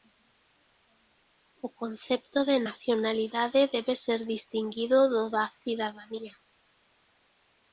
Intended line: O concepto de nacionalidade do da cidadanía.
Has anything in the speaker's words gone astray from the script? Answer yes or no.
yes